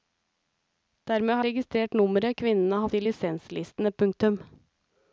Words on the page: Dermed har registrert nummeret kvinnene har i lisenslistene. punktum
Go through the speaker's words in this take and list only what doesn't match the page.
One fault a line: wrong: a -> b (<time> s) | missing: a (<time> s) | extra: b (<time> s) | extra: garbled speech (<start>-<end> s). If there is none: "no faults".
no faults